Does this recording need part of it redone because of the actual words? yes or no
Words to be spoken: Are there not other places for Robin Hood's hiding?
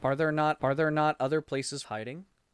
yes